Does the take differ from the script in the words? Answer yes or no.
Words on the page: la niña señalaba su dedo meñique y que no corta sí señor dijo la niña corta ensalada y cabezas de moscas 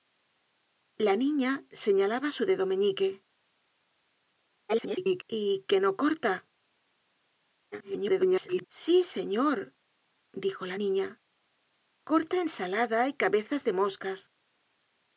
yes